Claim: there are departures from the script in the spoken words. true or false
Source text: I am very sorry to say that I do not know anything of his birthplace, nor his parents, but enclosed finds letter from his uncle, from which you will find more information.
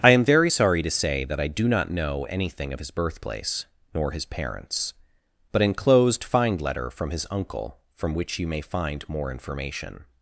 true